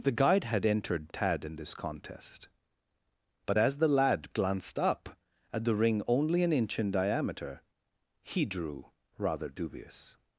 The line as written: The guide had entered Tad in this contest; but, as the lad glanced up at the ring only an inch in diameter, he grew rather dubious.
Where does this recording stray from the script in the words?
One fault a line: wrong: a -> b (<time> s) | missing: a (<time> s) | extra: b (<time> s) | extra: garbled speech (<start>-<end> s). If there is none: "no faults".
wrong: grew -> drew (8.4 s)